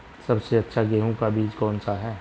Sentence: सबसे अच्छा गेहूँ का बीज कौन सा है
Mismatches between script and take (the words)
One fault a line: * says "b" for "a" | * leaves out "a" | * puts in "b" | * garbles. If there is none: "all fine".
all fine